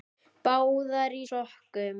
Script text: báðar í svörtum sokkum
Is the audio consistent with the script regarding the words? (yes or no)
no